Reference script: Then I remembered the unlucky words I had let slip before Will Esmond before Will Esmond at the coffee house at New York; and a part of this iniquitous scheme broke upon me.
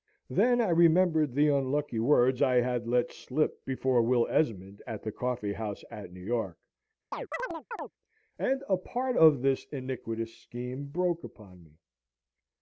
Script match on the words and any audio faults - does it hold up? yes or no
no